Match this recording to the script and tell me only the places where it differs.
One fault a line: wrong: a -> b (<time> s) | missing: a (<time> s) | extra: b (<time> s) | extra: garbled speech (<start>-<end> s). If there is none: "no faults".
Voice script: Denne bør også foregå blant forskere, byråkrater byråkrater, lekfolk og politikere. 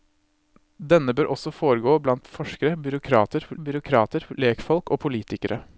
no faults